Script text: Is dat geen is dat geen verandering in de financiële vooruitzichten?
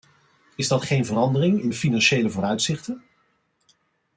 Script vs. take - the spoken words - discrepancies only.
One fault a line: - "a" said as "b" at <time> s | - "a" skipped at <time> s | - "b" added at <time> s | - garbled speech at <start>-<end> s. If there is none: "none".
- "is dat geen" skipped at 1.1 s